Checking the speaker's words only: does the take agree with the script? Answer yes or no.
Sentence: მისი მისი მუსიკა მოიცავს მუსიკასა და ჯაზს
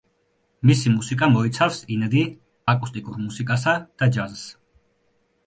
no